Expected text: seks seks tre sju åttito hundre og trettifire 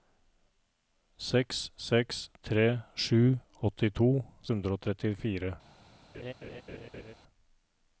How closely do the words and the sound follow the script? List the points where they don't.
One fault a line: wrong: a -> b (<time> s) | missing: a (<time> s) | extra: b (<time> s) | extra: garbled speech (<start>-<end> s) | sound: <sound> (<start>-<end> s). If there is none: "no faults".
sound: laugh (6.1-7.1 s)